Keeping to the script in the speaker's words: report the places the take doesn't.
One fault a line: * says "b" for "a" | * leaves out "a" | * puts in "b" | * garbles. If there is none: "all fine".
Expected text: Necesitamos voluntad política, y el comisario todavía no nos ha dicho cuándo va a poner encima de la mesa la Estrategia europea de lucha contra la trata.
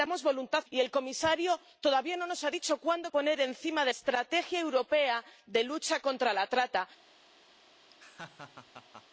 * leaves out "política"
* leaves out "va"
* leaves out "la mesa la"